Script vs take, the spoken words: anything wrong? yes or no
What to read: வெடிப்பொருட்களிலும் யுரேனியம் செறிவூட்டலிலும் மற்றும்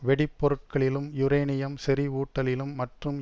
no